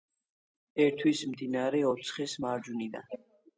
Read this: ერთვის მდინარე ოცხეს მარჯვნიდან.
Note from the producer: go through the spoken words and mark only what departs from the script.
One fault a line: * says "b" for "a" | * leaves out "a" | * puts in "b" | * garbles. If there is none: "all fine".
all fine